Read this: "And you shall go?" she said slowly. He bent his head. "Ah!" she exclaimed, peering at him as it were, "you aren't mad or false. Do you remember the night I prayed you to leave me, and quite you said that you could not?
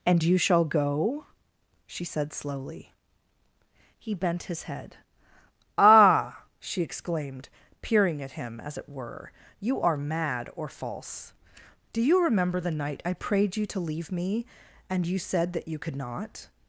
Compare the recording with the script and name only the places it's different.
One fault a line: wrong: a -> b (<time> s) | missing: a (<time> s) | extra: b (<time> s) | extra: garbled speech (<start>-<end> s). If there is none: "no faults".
wrong: aren't -> are (9.8 s)
missing: quite (15.1 s)